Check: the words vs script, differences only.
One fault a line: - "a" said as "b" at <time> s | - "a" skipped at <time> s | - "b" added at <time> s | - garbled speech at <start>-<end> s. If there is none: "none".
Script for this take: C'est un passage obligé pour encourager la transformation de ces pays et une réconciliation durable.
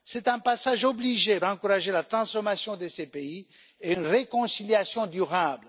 - "pour" skipped at 1.4 s